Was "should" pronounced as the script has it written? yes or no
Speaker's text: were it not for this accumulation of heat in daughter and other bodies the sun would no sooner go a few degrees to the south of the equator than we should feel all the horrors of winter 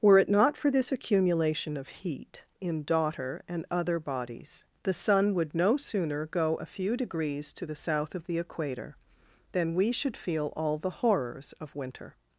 yes